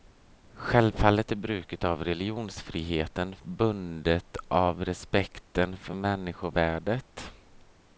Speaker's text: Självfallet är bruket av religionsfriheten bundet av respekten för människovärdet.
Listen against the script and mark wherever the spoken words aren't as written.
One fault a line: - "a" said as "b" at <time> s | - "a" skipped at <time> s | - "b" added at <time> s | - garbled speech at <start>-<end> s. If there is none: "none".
none